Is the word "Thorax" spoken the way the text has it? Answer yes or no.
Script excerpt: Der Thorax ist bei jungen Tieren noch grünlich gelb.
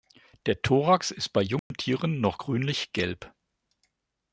yes